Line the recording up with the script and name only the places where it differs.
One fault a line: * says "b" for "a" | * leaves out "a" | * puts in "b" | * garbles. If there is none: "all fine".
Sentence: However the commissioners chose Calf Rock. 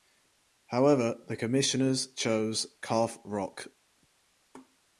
all fine